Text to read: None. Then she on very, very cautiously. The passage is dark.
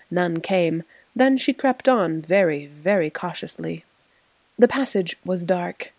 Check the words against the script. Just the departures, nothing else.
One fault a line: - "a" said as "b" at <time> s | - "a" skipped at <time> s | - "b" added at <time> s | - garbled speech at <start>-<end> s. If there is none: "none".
- "came" added at 0.4 s
- "crept" added at 1.5 s
- "is" said as "was" at 5.2 s